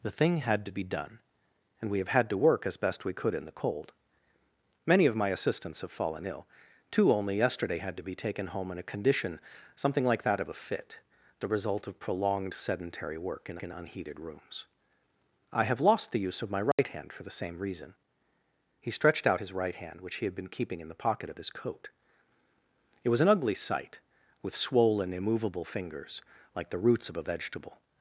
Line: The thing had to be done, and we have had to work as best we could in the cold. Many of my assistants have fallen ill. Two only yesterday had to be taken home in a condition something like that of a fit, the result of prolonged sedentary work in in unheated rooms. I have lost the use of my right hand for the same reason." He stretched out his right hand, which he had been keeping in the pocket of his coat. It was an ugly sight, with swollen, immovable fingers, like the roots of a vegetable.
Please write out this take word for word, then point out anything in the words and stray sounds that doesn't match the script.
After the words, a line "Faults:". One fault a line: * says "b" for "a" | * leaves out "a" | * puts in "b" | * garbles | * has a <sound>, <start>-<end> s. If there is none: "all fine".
The thing had to be done, and we have had to work as best we could in the cold. Many of my assistants have fallen ill. Two only yesterday had to be taken home in a condition something like that of a fit, the result of prolonged sedentary work in in unheated rooms. I have lost the use of my right hand for the same reason." He stretched out his right hand, which he had been keeping in the pocket of his coat. It was an ugly sight, with swollen, immovable fingers, like the roots of a vegetable.
Faults:
* has a dropout, 16.7-16.8 s